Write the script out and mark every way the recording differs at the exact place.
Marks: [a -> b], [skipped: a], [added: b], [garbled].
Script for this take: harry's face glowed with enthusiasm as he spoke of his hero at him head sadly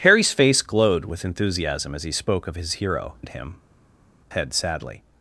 harry's face glowed with enthusiasm as he spoke of his hero at him head sadly